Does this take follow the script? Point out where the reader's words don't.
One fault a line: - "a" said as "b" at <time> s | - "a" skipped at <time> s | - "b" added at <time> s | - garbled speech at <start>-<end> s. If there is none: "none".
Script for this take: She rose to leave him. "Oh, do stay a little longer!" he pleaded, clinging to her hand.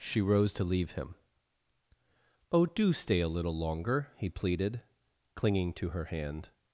none